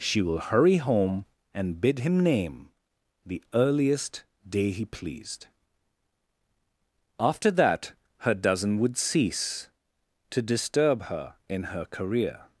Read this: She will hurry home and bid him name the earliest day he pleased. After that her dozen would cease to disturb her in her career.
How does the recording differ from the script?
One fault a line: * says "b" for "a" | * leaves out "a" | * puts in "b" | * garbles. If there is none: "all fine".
all fine